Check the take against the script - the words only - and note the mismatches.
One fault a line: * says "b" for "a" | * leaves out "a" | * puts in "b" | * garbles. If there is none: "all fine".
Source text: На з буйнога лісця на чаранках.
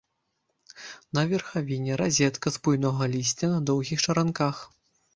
* puts in "верхавіне разетка"
* puts in "доўгіх"